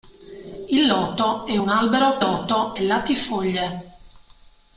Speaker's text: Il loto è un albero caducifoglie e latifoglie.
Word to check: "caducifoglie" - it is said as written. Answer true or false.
false